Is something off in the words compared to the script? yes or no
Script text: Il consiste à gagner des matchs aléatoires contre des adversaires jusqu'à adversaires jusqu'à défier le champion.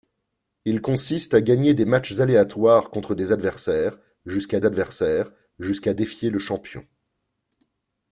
no